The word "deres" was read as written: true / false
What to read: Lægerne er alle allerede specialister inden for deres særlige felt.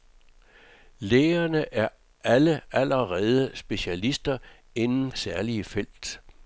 false